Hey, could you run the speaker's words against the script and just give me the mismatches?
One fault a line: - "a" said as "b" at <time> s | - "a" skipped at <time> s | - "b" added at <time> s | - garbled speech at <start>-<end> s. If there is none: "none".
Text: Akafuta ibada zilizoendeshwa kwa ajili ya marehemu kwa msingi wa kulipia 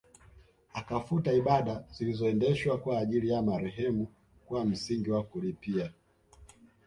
none